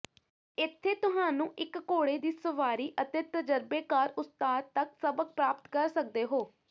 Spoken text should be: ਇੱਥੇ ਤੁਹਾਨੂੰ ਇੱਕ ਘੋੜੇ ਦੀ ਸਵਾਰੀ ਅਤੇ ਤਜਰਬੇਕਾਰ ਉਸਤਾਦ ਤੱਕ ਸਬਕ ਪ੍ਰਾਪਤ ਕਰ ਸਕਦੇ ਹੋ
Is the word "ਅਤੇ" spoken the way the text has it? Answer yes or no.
yes